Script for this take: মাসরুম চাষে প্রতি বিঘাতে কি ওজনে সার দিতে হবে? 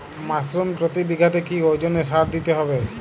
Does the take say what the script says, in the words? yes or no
no